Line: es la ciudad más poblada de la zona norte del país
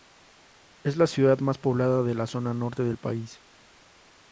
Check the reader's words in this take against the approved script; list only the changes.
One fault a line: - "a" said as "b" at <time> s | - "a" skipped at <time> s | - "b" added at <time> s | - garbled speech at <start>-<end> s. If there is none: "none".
none